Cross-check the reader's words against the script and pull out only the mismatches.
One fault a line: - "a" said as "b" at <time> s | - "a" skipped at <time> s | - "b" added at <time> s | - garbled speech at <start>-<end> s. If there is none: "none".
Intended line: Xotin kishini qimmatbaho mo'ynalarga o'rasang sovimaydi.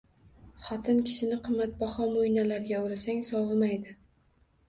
none